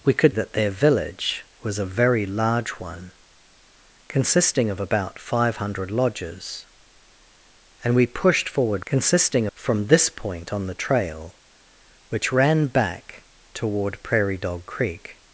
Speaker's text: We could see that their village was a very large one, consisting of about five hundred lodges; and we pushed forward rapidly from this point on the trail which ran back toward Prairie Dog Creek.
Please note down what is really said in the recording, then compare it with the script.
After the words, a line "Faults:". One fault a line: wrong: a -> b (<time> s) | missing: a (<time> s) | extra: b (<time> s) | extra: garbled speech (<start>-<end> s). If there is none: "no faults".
We could that their village was a very large one, consisting of about five hundred lodges; and we pushed forward consisting from this point on the trail which ran back toward Prairie Dog Creek.
Faults:
missing: see (0.3 s)
wrong: rapidly -> consisting (8.9 s)